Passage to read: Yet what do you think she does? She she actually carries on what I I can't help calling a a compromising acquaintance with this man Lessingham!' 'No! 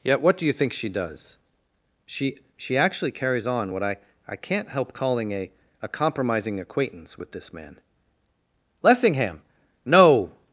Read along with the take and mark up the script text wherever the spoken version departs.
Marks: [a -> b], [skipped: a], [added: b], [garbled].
Yet what do you think she does? She she actually carries on what I I can't help calling a a compromising acquaintance with this man Lessingham!' 'No!